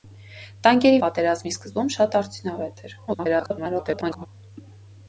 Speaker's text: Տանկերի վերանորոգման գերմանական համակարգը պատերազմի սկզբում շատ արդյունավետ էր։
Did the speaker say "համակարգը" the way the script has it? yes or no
no